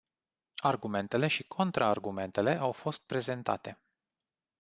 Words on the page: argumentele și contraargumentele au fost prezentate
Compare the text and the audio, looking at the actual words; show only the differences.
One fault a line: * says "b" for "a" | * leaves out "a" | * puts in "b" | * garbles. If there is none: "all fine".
all fine